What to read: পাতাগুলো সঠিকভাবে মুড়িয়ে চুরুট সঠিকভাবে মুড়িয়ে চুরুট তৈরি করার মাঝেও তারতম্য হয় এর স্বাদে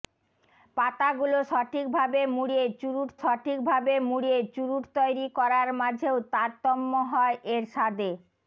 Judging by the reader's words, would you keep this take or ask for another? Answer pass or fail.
pass